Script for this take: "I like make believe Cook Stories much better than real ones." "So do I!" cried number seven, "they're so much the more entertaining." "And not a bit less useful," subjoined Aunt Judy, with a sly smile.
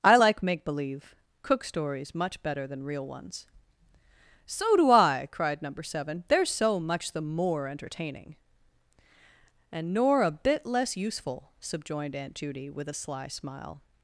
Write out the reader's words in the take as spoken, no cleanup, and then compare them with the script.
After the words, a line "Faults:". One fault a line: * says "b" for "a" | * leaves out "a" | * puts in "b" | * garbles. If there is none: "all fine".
"I like make believe Cook Stories much better than real ones." "So do I!" cried number seven, "they're so much the more entertaining." "And nor a bit less useful," subjoined Aunt Judy, with a sly smile.
Faults:
* says "nor" for "not"